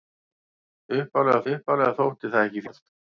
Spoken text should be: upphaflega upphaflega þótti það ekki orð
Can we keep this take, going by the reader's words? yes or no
yes